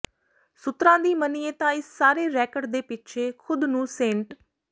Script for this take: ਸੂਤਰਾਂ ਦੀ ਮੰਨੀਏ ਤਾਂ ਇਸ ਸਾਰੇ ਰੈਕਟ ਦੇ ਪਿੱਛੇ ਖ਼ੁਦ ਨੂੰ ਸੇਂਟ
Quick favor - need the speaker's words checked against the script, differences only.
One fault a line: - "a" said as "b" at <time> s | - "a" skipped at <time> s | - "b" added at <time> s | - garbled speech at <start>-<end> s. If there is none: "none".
none